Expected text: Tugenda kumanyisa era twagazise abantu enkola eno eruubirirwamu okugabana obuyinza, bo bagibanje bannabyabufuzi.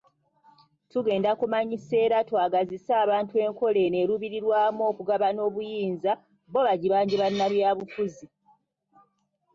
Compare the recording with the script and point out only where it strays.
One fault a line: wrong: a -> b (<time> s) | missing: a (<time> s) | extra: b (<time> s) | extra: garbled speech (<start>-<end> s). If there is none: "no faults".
no faults